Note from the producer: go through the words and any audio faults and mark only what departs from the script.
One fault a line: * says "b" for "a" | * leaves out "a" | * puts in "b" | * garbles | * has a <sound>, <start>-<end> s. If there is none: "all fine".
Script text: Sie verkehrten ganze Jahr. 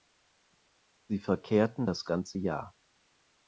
* puts in "das"